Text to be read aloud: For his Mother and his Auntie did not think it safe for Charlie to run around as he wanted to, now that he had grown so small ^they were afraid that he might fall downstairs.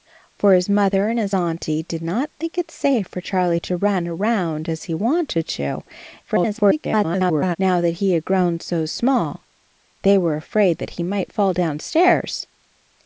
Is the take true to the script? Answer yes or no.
no